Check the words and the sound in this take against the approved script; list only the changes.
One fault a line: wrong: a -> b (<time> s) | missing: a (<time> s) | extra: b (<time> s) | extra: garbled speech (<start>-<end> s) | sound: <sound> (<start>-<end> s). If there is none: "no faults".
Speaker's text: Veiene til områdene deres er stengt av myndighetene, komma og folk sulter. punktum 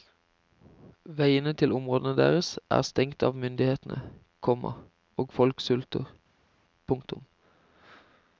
no faults